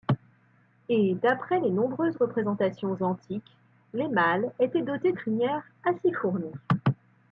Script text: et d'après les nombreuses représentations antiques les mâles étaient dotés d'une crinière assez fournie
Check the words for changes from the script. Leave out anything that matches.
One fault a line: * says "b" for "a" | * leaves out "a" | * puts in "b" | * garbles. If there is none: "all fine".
* leaves out "d'une"